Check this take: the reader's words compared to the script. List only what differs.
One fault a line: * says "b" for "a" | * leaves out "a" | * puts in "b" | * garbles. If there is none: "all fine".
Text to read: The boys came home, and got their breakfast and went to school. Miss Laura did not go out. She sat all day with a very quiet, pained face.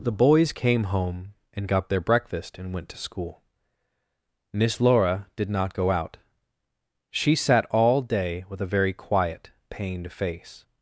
all fine